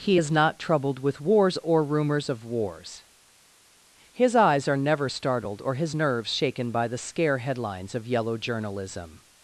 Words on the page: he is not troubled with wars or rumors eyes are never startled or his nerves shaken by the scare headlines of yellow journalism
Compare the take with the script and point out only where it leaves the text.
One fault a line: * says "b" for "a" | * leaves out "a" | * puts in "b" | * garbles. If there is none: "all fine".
* puts in "of wars his"